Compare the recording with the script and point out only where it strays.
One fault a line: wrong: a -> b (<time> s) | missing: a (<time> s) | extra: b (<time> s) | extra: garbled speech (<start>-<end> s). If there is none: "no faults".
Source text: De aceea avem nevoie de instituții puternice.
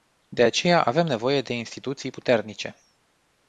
no faults